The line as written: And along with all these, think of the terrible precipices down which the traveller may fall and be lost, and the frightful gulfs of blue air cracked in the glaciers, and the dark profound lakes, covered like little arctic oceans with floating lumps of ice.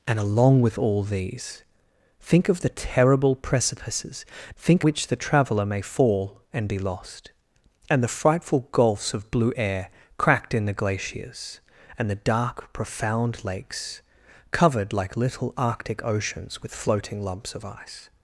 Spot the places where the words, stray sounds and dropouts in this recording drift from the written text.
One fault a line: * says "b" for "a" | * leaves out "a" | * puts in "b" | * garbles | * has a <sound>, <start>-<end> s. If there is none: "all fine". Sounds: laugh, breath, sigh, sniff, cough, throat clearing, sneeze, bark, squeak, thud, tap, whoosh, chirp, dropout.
* says "think" for "down"